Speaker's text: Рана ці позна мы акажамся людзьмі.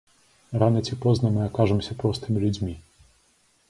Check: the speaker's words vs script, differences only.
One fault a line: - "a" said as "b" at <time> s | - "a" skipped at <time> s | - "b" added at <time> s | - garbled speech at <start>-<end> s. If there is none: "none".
- "простымі" added at 2.0 s